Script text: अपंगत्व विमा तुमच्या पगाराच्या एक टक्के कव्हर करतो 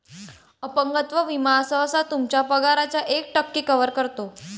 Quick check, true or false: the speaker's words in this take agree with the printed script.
false